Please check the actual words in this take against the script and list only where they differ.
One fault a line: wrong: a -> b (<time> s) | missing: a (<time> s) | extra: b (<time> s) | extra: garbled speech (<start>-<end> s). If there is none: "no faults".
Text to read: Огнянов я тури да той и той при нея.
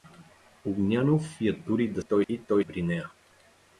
no faults